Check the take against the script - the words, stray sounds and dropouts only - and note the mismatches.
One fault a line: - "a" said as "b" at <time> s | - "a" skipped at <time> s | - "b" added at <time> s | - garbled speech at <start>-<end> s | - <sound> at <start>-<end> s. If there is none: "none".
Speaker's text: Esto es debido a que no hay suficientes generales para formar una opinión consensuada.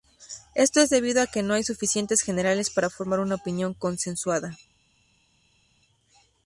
none